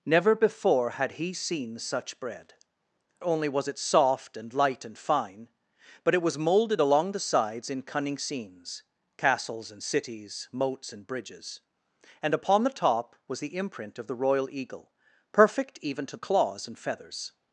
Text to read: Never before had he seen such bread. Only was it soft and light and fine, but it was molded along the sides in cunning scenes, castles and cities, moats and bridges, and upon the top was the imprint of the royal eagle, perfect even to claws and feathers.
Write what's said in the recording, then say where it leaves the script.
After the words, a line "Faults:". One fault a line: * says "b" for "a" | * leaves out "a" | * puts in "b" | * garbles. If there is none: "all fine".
Never before had he seen such bread. Only was it soft and light and fine, but it was molded along the sides in cunning scenes, castles and cities, moats and bridges, and upon the top was the imprint of the royal eagle, perfect even to claws and feathers.
Faults:
all fine